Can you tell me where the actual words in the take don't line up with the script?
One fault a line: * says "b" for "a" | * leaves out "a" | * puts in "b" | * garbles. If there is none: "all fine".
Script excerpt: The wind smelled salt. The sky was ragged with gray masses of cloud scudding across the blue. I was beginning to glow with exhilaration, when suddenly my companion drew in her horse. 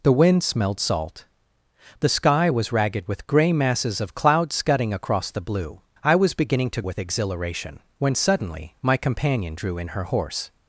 * leaves out "glow"